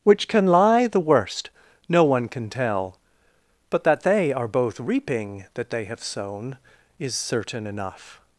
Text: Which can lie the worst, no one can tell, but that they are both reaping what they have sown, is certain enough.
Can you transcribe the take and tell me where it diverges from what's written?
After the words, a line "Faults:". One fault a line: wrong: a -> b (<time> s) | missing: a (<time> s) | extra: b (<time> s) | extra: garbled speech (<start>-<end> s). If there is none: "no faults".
Which can lie the worst, no one can tell, but that they are both reaping that they have sown, is certain enough.
Faults:
wrong: what -> that (5.6 s)